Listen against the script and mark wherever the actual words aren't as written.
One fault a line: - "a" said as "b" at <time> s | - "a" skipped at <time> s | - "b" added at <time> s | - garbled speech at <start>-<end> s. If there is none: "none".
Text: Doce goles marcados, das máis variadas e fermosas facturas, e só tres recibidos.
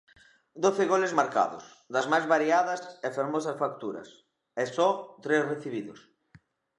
none